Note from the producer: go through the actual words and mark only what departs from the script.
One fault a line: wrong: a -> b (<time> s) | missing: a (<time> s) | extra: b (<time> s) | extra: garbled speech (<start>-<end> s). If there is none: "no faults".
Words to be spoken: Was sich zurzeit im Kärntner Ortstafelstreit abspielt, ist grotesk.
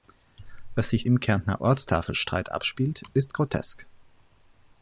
missing: zurzeit (1.1 s)